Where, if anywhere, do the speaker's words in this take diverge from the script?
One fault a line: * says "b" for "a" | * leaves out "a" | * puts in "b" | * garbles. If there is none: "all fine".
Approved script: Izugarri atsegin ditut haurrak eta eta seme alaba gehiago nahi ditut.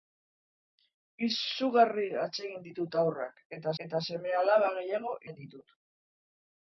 all fine